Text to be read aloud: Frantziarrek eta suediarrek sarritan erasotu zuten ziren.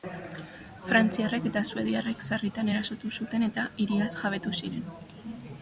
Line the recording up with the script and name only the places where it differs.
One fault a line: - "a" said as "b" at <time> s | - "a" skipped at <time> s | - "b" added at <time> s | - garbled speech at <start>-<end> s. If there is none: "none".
- "eta hiriaz jabetu" added at 3.5 s